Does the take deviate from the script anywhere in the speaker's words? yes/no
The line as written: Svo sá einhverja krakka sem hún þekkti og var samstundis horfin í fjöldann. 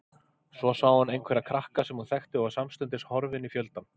yes